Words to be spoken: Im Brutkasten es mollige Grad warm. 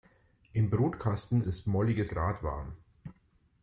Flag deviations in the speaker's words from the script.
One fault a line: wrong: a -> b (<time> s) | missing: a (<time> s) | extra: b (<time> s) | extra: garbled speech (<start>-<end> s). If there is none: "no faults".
no faults